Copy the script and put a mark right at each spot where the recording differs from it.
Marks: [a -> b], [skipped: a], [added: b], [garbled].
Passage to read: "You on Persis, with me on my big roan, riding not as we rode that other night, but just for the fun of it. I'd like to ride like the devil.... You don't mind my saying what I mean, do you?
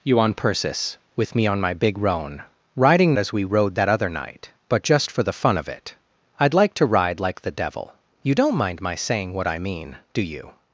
"You on Persis, with me on my big roan, riding [skipped: not] as we rode that other night, but just for the fun of it. I'd like to ride like the devil.... You don't mind my saying what I mean, do you?